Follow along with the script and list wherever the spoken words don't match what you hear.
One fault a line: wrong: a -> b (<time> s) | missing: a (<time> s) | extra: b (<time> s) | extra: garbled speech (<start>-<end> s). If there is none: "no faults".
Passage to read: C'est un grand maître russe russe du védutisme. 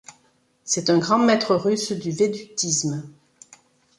missing: russe (1.9 s)